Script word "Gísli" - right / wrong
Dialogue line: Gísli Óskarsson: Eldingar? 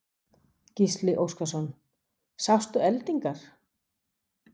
right